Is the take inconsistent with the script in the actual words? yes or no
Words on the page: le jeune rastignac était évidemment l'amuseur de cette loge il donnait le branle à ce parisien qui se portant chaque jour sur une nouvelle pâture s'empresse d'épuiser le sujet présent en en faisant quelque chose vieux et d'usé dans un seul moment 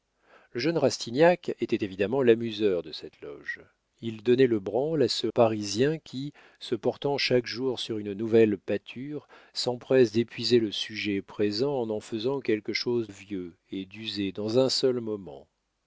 no